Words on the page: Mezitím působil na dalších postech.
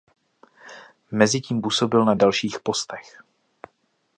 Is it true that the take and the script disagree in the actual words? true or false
false